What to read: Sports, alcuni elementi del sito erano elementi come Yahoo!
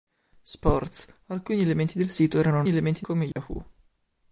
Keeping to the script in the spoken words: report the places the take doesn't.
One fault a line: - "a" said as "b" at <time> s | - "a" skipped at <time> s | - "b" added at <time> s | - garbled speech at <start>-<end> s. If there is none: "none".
none